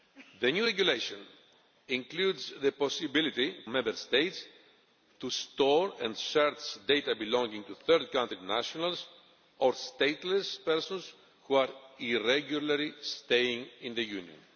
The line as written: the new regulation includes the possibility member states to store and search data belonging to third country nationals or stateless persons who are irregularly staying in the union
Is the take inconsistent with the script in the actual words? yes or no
no